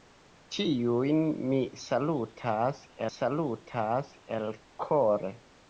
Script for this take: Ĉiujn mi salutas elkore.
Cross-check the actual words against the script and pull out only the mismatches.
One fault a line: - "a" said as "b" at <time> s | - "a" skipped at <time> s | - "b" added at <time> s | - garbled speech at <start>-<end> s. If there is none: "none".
- "salutas" added at 3.1 s